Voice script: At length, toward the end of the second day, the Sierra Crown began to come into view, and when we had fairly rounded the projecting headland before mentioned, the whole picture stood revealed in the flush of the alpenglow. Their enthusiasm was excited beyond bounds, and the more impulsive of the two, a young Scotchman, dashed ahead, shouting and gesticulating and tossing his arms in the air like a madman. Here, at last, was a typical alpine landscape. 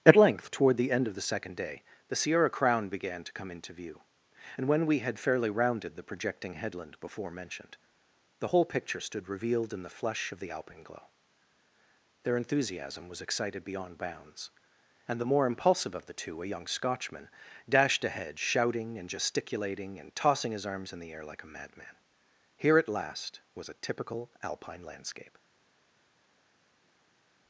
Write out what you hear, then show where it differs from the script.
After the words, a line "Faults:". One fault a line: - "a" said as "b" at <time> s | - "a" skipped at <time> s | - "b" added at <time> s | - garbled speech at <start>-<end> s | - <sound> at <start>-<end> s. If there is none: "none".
At length, toward the end of the second day, the Sierra Crown began to come into view, and when we had fairly rounded the projecting headland before mentioned, the whole picture stood revealed in the flush of the alpenglow. Their enthusiasm was excited beyond bounds, and the more impulsive of the two, a young Scotchman, dashed ahead, shouting and gesticulating and tossing his arms in the air like a madman. Here, at last, was a typical alpine landscape.
Faults:
none